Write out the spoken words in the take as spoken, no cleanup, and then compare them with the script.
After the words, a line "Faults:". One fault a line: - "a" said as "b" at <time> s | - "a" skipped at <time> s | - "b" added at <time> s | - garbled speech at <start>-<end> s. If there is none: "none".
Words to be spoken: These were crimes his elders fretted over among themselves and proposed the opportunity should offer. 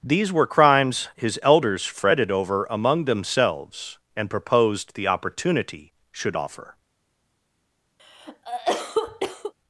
These were crimes his elders fretted over among themselves and proposed the opportunity should offer.
Faults:
none